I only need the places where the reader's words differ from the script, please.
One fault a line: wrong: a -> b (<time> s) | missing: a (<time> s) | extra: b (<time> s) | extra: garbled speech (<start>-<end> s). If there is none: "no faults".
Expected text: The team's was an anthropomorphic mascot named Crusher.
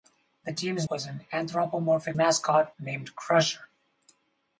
no faults